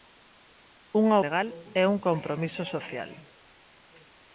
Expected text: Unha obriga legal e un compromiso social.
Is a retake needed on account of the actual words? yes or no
yes